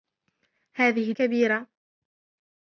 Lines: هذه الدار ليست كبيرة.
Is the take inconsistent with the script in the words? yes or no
yes